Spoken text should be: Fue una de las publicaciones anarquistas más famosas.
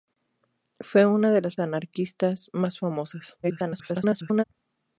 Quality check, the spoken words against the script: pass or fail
fail